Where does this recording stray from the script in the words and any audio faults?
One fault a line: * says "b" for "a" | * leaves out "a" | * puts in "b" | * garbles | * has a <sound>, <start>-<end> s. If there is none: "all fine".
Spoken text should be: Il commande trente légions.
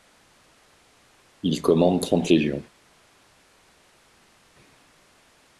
all fine